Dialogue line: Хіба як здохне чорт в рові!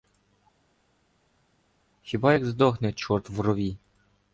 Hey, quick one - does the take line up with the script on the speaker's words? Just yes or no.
yes